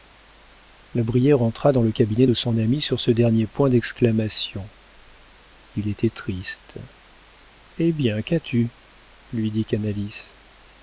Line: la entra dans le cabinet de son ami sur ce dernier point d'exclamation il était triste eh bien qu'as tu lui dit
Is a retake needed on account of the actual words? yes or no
yes